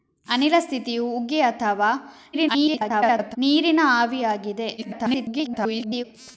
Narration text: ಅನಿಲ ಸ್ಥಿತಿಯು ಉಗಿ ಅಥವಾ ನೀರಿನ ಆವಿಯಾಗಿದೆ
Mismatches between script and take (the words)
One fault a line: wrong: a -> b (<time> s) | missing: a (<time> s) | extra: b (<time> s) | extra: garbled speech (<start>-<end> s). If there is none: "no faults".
extra: garbled speech (2.3-3.4 s)
extra: garbled speech (4.8-6.0 s)